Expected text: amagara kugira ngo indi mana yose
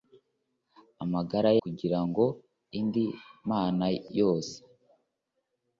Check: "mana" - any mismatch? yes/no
no